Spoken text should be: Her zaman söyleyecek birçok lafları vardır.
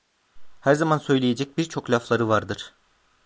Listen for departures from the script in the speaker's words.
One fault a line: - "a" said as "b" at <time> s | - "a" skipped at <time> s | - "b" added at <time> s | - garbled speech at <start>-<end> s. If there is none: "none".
none